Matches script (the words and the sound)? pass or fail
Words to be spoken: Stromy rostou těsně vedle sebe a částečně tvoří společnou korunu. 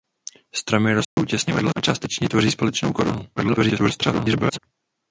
fail